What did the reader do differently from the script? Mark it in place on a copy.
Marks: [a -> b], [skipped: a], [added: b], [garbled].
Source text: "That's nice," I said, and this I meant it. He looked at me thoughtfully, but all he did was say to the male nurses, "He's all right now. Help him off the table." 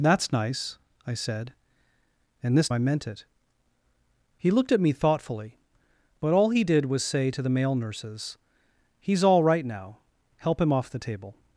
"That's nice," I said, and this I meant it. He looked at me thoughtfully, but all he did was say to the male nurses, "He's all right now. Help him off the table."